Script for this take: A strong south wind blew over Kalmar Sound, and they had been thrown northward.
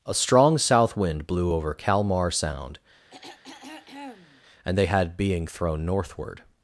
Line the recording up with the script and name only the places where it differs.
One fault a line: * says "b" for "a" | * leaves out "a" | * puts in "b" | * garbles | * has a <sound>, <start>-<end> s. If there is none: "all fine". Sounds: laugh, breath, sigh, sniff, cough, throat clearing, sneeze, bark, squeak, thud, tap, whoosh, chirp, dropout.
* has a throat clearing, 3.1-4.4 s
* says "being" for "been"